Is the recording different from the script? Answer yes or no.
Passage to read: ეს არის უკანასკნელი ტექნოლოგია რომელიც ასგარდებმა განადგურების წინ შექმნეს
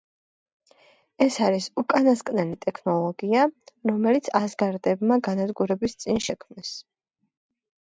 no